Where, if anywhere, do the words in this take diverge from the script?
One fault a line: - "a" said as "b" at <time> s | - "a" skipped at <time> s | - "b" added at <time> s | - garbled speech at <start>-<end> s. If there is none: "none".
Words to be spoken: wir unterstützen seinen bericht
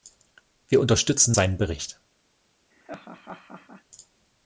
none